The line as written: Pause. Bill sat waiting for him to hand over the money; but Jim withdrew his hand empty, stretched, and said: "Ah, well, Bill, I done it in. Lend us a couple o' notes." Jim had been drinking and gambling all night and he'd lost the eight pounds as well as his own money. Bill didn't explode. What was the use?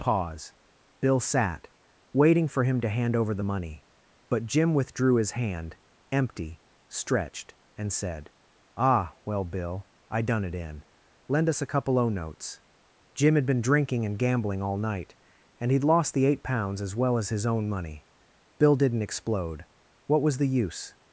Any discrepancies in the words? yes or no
no